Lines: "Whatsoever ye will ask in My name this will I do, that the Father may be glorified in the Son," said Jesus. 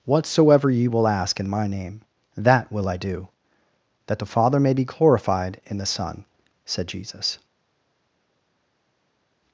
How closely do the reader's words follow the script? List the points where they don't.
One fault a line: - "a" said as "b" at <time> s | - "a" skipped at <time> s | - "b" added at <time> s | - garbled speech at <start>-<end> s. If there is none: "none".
- "this" said as "that" at 2.4 s